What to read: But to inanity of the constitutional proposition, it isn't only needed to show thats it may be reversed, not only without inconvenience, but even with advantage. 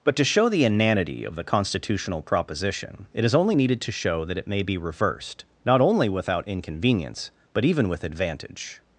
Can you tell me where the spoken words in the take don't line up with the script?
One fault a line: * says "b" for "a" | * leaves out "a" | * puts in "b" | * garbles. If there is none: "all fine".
* puts in "show the"
* says "is" for "isn't"
* says "that" for "thats"